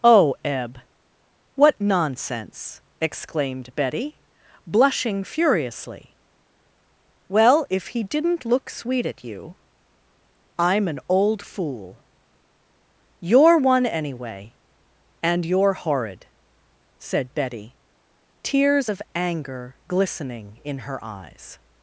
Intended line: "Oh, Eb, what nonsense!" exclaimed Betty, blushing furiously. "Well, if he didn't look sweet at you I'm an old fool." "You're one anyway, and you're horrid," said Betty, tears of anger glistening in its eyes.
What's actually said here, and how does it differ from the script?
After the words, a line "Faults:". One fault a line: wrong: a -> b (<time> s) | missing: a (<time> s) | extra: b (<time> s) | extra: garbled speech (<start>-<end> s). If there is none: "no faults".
"Oh, Eb, what nonsense!" exclaimed Betty, blushing furiously. "Well, if he didn't look sweet at you I'm an old fool." "You're one anyway, and you're horrid," said Betty, tears of anger glistening in her eyes.
Faults:
wrong: its -> her (20.9 s)